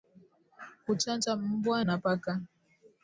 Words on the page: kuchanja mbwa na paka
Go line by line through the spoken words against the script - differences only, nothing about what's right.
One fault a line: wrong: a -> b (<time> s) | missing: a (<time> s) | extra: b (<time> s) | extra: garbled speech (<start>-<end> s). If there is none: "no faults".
no faults